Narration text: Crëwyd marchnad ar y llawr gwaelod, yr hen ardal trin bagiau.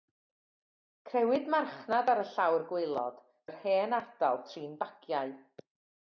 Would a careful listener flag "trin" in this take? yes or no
no